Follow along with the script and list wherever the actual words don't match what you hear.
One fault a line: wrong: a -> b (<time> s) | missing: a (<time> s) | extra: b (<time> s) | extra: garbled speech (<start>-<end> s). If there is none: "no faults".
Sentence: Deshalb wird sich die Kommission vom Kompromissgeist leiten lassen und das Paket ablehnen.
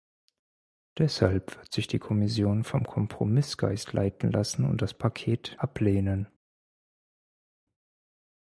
no faults